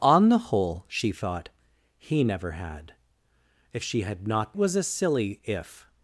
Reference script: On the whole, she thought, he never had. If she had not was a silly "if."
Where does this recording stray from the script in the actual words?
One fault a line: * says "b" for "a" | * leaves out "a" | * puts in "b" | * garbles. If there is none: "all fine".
all fine